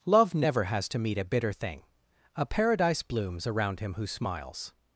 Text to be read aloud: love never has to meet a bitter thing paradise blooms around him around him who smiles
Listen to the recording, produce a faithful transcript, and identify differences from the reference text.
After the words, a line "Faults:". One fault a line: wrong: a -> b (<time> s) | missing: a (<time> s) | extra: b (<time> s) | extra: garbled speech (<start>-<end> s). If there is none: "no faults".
love never has to meet a bitter thing a paradise blooms around him who smiles
Faults:
extra: a (2.4 s)
missing: around him (3.9 s)